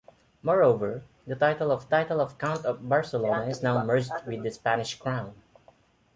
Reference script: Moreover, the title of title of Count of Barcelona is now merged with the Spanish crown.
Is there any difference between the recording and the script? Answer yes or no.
no